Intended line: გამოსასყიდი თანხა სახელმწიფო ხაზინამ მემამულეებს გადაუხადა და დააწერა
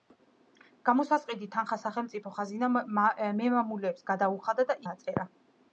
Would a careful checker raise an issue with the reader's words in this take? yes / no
no